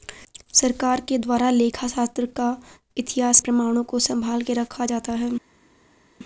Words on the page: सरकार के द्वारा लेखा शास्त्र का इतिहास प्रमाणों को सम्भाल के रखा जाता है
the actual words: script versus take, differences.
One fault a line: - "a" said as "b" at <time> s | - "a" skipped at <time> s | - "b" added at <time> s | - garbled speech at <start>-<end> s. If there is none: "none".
none